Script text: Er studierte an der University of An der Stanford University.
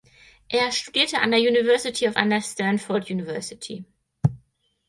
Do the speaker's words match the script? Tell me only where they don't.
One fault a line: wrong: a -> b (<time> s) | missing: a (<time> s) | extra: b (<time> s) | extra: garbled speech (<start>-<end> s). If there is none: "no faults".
no faults